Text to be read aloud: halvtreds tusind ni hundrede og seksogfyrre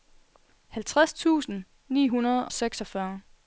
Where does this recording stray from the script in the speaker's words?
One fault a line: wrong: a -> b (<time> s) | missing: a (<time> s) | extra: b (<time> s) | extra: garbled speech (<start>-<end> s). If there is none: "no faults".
missing: og (2.5 s)